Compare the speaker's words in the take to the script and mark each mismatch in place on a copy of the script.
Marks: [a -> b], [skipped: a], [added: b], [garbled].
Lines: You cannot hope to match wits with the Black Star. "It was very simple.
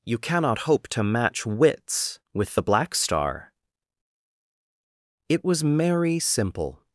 You cannot hope to match wits with the Black Star. "It was [very -> merry] simple.